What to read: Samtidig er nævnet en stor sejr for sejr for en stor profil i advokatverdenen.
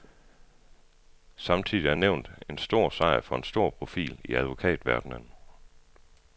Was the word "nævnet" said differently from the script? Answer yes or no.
no